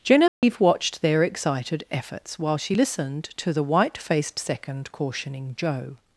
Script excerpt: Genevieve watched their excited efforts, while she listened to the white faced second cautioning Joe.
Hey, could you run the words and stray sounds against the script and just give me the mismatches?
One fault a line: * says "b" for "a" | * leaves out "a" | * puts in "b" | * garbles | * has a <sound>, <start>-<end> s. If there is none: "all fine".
* has a dropout, 0.3-0.4 s